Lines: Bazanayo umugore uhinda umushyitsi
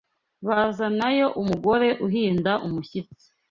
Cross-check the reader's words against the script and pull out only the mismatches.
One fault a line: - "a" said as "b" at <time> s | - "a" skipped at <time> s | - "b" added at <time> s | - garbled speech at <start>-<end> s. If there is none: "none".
none